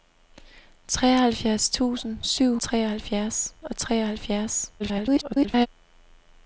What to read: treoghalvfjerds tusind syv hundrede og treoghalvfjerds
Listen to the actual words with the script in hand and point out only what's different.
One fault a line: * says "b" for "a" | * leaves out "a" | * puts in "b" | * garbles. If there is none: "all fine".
* says "treoghalvfjerds" for "hundrede"
* garbles